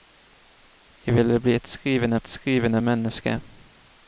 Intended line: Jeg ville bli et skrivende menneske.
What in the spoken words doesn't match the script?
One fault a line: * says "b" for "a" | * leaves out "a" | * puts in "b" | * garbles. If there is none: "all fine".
* puts in "et skrivende"